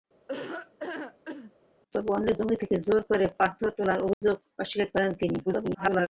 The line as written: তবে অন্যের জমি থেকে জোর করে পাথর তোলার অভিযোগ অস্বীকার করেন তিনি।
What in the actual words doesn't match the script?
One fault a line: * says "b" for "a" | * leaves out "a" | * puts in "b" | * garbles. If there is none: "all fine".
* garbles